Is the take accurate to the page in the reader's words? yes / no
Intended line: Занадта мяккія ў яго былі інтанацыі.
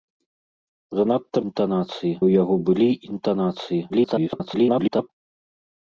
no